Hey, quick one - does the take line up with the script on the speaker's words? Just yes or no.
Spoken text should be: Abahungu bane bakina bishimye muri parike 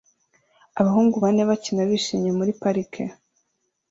yes